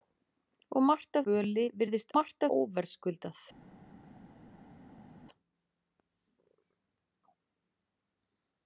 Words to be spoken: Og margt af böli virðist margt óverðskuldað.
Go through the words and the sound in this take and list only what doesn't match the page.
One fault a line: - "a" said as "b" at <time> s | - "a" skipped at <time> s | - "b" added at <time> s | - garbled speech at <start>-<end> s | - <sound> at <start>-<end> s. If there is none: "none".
none